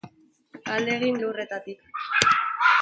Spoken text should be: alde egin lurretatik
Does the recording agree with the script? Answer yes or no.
yes